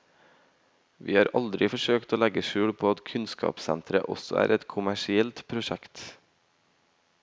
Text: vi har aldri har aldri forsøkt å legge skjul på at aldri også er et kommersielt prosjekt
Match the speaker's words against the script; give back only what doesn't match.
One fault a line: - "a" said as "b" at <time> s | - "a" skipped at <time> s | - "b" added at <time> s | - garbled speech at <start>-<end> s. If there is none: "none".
- "har aldri" skipped at 1.7 s
- "aldri" said as "kunnskapssenteret" at 3.1 s